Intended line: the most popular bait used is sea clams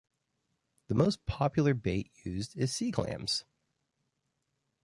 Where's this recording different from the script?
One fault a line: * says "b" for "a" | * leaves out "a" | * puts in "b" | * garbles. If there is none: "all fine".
all fine